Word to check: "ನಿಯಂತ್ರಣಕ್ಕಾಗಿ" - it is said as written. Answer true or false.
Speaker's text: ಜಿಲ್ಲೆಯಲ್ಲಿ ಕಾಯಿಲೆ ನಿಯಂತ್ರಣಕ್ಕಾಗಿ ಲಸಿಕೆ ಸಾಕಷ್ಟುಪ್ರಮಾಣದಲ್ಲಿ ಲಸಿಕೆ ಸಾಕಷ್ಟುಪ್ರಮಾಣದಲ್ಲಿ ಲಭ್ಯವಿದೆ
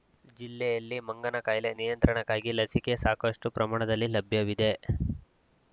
true